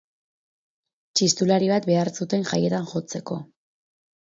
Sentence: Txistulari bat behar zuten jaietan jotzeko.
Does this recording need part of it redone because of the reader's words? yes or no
no